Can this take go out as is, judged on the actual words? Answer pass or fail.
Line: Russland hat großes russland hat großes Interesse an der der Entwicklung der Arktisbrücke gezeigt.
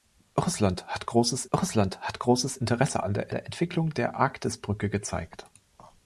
pass